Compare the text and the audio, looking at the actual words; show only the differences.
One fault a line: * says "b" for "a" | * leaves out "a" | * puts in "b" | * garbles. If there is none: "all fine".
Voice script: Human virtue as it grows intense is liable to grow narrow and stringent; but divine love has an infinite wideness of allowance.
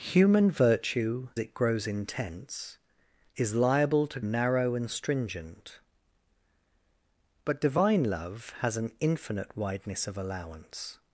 * leaves out "as"
* leaves out "grow"